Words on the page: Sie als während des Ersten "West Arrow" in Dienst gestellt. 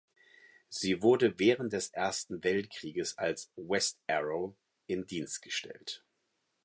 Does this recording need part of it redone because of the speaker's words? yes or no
yes